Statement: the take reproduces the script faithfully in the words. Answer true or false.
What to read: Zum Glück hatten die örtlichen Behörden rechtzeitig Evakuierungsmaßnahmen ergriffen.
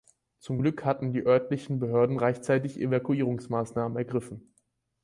true